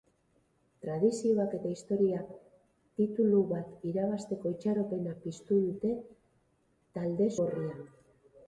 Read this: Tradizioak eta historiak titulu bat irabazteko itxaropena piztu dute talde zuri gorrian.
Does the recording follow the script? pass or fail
fail